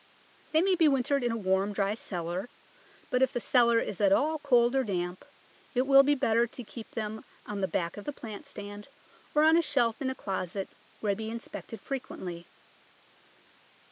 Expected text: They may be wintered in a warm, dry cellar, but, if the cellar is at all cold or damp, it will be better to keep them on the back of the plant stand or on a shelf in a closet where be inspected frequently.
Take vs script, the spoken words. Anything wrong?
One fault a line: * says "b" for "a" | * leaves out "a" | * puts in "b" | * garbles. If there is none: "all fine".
all fine